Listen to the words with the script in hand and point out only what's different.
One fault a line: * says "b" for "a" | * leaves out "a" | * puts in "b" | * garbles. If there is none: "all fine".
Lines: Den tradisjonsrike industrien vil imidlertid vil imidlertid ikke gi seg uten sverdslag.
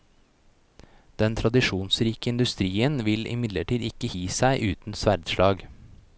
* leaves out "vil imidlertid"